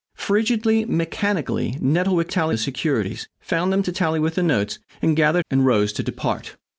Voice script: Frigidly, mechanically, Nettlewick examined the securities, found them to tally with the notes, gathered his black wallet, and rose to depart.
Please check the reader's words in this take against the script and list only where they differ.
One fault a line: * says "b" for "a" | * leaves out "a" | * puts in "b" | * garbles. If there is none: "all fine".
* says "tally" for "examined"
* leaves out "his black wallet"